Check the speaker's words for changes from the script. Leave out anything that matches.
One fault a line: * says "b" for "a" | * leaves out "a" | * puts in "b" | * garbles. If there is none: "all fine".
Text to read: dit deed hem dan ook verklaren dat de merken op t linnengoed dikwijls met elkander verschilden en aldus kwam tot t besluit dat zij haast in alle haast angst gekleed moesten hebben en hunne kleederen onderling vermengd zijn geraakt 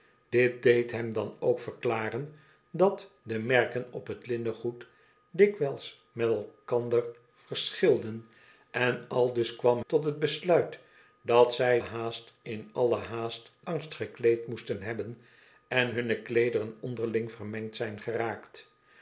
all fine